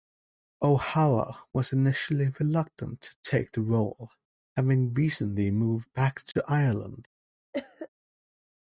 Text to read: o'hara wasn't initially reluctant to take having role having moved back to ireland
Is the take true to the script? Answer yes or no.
no